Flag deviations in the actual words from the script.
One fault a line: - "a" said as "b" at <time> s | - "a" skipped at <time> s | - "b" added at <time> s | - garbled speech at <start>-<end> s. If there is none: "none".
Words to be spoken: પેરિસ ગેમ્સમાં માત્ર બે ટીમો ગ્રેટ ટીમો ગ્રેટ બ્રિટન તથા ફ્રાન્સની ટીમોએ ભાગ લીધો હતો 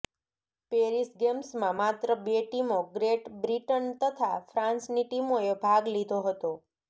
- "ટીમો ગ્રેટ" skipped at 3.3 s